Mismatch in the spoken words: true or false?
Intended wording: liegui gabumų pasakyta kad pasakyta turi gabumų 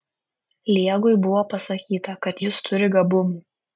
true